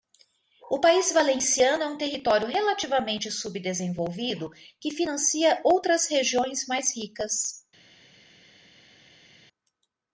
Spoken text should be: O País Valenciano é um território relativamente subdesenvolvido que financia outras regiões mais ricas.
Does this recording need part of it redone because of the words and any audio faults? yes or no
no